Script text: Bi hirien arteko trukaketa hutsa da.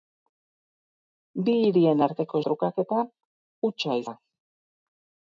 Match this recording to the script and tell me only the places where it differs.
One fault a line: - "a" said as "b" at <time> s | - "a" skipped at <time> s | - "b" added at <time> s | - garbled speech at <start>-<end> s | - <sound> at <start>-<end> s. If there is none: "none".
none